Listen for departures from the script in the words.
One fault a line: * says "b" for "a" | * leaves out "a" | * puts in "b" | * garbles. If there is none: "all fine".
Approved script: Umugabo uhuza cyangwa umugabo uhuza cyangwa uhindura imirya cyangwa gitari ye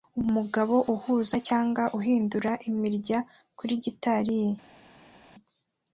* leaves out "umugabo uhuza cyangwa"
* says "kuri" for "cyangwa"